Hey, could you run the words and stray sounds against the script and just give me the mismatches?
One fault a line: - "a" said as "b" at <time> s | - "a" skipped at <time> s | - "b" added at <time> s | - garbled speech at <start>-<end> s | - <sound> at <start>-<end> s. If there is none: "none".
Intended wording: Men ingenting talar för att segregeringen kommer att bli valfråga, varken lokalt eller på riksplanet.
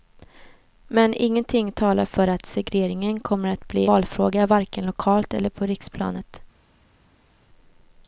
none